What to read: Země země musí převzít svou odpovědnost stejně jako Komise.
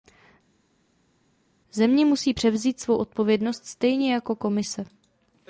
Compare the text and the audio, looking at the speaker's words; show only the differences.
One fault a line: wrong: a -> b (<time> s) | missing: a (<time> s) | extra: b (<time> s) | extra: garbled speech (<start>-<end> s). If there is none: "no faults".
missing: země (2.1 s)